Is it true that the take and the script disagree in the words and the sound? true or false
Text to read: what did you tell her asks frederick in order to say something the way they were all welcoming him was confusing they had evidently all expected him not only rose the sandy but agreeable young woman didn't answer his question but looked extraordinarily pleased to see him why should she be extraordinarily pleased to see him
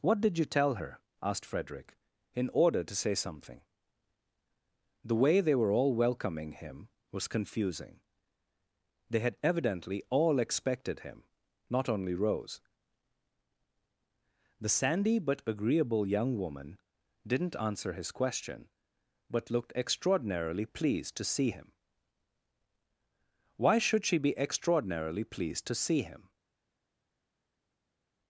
true